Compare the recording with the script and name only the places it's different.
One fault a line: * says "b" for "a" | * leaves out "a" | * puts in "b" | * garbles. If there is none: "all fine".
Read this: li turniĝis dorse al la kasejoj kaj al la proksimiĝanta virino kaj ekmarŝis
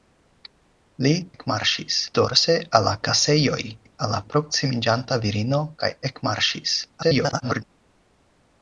* says "ekmarŝis" for "turniĝis"
* leaves out "kaj"
* garbles